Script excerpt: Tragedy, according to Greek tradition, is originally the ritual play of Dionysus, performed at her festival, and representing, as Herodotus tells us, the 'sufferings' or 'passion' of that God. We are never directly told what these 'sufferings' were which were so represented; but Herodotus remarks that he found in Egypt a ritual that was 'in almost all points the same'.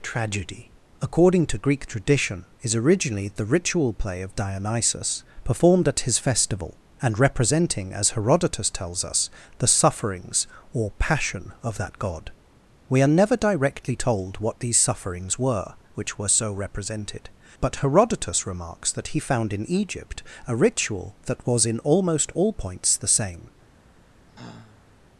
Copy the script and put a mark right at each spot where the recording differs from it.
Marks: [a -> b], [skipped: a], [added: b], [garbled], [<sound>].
Tragedy, according to Greek tradition, is originally the ritual play of Dionysus, performed at [her -> his] festival, and representing, as Herodotus tells us, the 'sufferings' or 'passion' of that God. We are never directly told what these 'sufferings' were which were so represented; but Herodotus remarks that he found in Egypt a ritual that was 'in almost all points the same'. [sigh]